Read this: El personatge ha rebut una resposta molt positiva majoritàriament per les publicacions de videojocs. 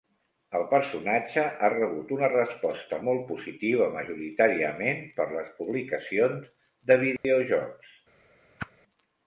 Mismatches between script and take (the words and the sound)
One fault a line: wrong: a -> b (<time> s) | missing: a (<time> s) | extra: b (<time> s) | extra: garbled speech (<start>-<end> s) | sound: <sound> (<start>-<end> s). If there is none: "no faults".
sound: dropout (7.2-7.2 s)
sound: whoosh (8.6-8.7 s)